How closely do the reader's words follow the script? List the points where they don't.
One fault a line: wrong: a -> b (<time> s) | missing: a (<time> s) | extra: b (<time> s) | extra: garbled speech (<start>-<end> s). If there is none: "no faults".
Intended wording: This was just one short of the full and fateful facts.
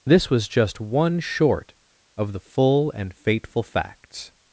no faults